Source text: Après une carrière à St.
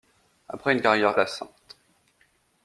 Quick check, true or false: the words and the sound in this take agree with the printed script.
true